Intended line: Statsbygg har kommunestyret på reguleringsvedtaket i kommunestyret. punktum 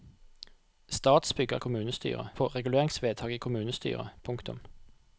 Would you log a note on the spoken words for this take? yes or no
no